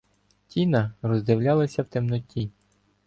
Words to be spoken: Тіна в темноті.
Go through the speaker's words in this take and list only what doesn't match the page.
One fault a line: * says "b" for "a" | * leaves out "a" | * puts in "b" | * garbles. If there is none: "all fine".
* puts in "роздивлялася"